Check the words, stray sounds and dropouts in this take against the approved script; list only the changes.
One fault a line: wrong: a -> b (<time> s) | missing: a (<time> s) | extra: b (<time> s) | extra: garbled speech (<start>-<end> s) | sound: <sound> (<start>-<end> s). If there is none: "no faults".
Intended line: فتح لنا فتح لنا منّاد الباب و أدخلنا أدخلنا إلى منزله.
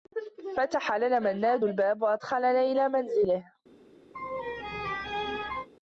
missing: فتح لنا (1.2 s)
missing: أدخلنا (2.6 s)
sound: laugh (4.1-5.7 s)